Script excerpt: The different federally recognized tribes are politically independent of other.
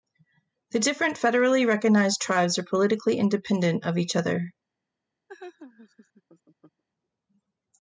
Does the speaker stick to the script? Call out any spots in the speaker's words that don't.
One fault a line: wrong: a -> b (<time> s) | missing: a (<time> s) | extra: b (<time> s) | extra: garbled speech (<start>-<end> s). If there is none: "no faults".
extra: each (4.0 s)